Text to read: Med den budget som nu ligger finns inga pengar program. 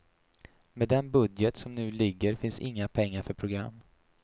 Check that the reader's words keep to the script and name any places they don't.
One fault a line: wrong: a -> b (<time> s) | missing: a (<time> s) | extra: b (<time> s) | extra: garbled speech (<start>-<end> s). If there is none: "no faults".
extra: för (3.2 s)